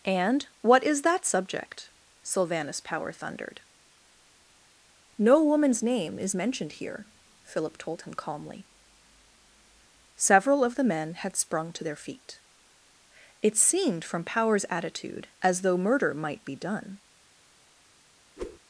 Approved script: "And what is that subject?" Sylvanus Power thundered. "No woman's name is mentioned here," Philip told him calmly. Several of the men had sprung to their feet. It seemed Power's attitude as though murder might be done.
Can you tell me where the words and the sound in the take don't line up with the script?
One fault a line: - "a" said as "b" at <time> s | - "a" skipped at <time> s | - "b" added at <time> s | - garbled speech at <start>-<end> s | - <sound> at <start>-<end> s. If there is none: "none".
- "from" added at 14.0 s
- whoosh at 18.4-18.6 s